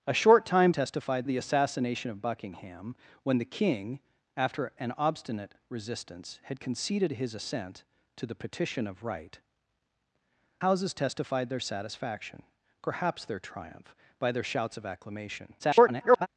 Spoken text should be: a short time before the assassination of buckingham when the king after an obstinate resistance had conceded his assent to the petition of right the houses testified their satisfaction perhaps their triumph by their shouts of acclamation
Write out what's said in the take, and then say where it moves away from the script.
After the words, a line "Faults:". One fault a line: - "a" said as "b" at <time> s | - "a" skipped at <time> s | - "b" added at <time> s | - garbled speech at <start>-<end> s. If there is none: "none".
a short time testified the assassination of buckingham when the king after an obstinate resistance had conceded his assent to the petition of right houses testified their satisfaction perhaps their triumph by their shouts of acclamation [garbled]
Faults:
- "before" said as "testified" at 0.7 s
- "the" skipped at 9.4 s
- garbled speech at 15.6-16.3 s